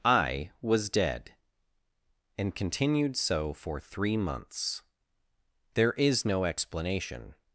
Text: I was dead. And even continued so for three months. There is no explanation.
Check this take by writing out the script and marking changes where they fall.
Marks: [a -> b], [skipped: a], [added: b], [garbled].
I was dead. And [skipped: even] continued so for three months. There is no explanation.